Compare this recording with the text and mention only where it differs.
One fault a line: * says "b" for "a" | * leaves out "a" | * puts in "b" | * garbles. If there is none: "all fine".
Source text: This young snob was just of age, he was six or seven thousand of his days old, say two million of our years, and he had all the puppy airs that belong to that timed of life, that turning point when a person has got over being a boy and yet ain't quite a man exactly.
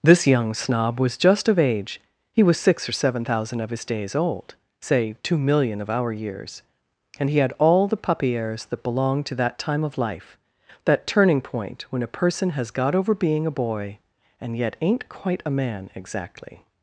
* says "time" for "timed"